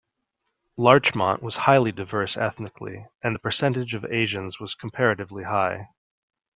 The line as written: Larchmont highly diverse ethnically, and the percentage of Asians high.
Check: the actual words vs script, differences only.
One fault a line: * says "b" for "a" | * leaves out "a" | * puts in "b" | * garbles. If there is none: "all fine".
* puts in "was"
* puts in "was comparatively"